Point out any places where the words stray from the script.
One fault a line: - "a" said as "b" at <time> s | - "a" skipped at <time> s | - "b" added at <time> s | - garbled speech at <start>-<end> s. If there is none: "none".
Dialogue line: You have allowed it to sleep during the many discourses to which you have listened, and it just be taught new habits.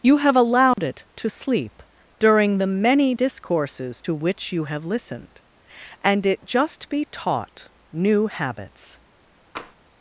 none